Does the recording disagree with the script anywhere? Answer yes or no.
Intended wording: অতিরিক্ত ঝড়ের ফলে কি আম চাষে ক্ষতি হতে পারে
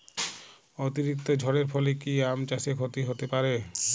no